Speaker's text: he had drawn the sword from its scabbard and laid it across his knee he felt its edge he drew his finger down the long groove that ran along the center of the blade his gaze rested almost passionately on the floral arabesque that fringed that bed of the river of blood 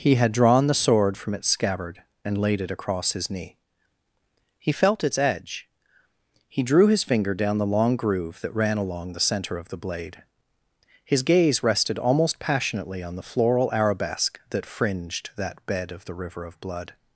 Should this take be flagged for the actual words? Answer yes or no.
no